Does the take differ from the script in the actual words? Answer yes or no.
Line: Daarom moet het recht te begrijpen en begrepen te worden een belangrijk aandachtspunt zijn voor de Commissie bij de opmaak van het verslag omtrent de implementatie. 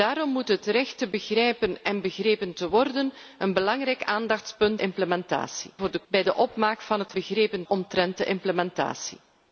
yes